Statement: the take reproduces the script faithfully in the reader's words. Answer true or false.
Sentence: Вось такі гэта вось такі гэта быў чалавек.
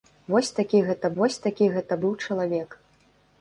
true